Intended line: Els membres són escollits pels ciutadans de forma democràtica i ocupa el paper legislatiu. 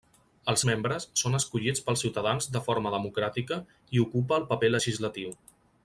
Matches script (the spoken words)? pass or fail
pass